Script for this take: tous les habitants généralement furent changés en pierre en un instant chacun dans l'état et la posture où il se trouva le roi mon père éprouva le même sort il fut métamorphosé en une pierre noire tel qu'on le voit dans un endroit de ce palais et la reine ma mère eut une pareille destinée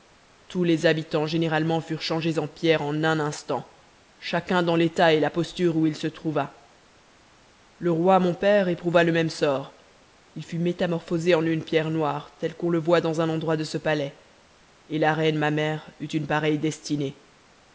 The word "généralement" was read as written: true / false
true